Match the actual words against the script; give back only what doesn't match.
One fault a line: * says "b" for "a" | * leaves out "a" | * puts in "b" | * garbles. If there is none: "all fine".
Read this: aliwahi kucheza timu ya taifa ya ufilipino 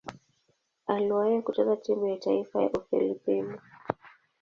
all fine